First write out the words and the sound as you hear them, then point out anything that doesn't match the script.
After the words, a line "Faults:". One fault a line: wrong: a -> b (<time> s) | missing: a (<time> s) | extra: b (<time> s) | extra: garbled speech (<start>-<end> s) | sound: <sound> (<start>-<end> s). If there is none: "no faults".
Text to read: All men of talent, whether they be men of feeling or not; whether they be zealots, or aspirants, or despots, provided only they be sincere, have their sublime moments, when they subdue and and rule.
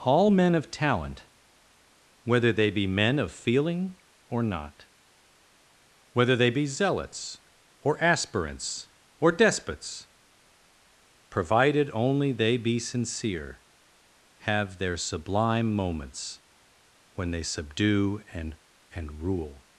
All men of talent, whether they be men of feeling or not; whether they be zealots, or aspirants, or despots, provided only they be sincere, have their sublime moments, when they subdue and and rule.
Faults:
no faults